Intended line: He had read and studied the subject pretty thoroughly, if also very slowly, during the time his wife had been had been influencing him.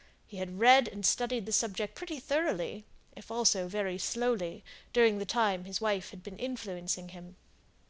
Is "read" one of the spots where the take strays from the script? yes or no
no